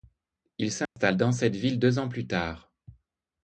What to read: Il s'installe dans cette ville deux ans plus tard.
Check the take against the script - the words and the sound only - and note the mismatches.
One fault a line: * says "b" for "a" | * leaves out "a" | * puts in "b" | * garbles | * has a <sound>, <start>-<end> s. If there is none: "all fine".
* has a dropout, 0.9-1.0 s